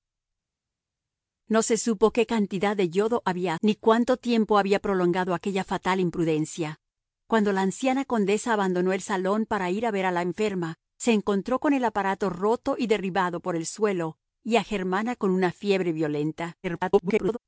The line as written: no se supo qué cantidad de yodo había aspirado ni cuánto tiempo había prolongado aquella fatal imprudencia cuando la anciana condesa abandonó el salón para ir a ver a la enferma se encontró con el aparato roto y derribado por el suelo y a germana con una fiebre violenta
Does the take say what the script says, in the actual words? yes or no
no